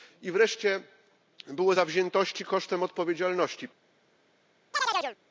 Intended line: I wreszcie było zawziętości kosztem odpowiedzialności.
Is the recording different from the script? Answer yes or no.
no